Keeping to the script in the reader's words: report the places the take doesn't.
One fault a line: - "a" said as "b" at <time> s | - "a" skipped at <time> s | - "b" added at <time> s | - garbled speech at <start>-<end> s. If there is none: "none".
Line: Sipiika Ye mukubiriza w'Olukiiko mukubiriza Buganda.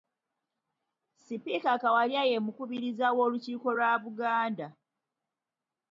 - "Kawalya" added at 1.8 s
- "mukubiriza" said as "lwa" at 3.8 s